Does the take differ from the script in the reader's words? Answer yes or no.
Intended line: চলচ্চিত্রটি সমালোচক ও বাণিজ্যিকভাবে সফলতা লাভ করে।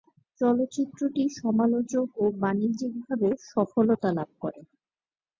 no